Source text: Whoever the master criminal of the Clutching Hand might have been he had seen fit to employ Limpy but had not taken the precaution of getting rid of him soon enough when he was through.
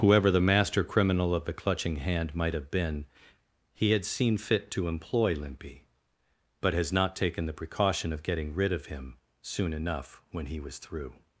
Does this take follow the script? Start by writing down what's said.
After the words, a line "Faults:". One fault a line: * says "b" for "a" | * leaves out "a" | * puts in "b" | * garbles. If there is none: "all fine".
Whoever the master criminal of the Clutching Hand might have been he had seen fit to employ Limpy but has not taken the precaution of getting rid of him soon enough when he was through.
Faults:
* says "has" for "had"